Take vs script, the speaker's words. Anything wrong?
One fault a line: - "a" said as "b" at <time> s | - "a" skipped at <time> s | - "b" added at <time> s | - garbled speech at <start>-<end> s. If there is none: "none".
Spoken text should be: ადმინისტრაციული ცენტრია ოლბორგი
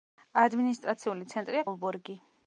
none